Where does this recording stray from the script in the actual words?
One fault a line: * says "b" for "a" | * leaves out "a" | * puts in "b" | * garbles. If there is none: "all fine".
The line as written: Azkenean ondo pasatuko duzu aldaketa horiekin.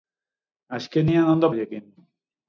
* leaves out "pasatuko duzu aldaketa"